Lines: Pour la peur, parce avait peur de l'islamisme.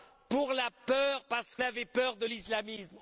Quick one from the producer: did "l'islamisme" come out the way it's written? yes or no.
yes